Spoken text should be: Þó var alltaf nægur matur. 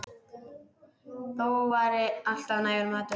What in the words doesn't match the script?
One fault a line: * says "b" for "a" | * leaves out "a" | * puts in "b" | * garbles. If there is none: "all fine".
all fine